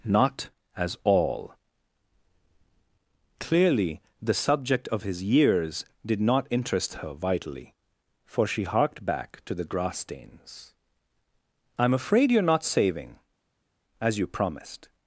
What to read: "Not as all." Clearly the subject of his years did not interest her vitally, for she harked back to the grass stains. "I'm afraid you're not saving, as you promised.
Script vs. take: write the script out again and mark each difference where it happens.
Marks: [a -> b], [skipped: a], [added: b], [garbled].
"Not as all." Clearly the subject of his years did not interest her vitally, for she harked back to the grass stains. "I'm afraid you're not saving, as you promised.